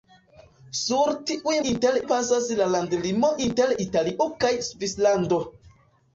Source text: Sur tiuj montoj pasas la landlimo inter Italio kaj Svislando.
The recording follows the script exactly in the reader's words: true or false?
false